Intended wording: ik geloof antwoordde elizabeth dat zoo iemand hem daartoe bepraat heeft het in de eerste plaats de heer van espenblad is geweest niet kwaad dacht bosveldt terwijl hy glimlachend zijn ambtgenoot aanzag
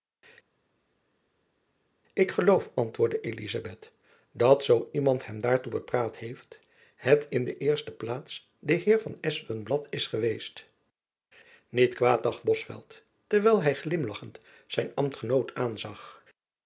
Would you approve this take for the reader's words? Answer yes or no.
yes